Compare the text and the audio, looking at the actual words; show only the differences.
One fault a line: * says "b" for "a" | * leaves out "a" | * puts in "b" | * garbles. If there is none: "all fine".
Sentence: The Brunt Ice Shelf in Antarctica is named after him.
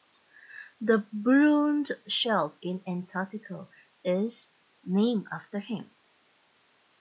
* leaves out "Ice"